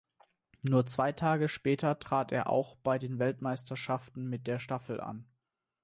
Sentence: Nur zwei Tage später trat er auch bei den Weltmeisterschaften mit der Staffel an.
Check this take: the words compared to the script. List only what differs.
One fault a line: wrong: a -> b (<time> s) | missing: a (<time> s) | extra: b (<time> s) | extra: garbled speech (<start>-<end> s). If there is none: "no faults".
no faults